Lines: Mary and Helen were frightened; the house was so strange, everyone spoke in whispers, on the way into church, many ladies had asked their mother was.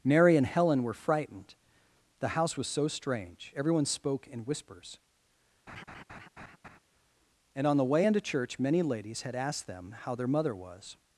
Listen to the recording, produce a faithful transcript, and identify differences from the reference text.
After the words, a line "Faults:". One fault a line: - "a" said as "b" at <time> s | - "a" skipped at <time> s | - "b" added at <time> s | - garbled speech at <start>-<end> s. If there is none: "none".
Mary and Helen were frightened; the house was so strange, everyone spoke in whispers, and, on the way into church, many ladies had asked them how their mother was.
Faults:
- "and" added at 7.5 s
- "them how" added at 9.7 s